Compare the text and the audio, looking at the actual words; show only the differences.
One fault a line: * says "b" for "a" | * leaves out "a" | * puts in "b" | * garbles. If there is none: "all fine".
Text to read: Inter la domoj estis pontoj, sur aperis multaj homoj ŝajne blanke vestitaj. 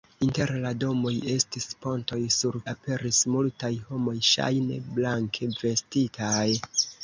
all fine